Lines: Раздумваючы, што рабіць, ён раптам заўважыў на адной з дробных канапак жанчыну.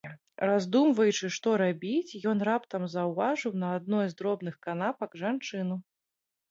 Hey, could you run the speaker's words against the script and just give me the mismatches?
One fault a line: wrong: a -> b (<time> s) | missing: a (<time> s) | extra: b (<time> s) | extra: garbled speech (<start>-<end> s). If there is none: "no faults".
no faults